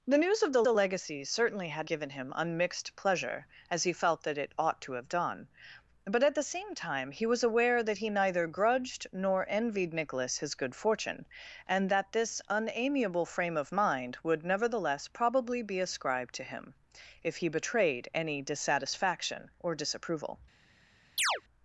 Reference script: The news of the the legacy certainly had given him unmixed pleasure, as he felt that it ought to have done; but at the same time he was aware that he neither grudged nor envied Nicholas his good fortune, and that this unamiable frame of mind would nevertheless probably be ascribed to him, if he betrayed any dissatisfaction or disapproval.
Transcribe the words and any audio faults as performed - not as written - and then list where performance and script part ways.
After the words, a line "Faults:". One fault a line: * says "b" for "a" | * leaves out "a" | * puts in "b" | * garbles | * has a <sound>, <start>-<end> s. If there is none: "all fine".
The news of the the legacy certainly had given him unmixed pleasure, as he felt that it ought to have done; but at the same time he was aware that he neither grudged nor envied Nicholas his good fortune, and that this unamiable frame of mind would nevertheless probably be ascribed to him, if he betrayed any dissatisfaction or disapproval.
Faults:
* has a chirp, 21.2-21.4 s